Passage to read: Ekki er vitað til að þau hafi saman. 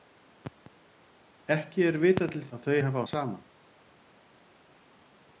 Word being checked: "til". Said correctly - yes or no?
yes